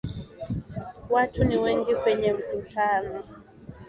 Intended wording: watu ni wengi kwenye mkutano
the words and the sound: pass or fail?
pass